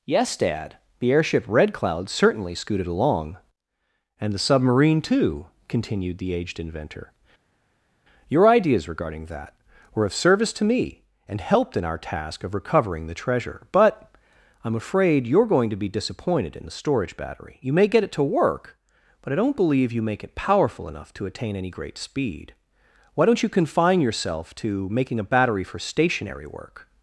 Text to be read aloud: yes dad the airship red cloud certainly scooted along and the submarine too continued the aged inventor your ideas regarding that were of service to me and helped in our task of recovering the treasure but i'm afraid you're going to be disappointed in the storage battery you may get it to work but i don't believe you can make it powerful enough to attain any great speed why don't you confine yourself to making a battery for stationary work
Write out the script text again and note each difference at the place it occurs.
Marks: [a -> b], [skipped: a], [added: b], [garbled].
yes dad the airship red cloud certainly scooted along and the submarine too continued the aged inventor your ideas regarding that were of service to me and helped in our task of recovering the treasure but i'm afraid you're going to be disappointed in the storage battery you may get it to work but i don't believe you [skipped: can] make it powerful enough to attain any great speed why don't you confine yourself to making a battery for stationary work